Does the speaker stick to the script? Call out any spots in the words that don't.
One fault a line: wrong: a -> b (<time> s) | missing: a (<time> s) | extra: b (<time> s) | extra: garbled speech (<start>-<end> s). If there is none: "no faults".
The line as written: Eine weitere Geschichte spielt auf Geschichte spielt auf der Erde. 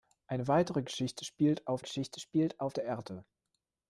no faults